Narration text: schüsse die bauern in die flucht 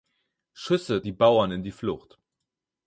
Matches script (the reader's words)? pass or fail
pass